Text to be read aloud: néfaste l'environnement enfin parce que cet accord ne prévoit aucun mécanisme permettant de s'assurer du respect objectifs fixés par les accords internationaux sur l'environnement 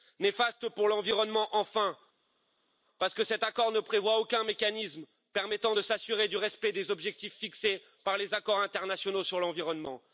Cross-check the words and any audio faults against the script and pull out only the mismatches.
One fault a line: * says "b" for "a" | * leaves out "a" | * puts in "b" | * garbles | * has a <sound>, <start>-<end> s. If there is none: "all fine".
* puts in "pour"
* puts in "des"